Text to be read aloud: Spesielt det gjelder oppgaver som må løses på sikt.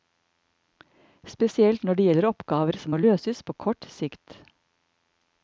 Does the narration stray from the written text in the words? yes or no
yes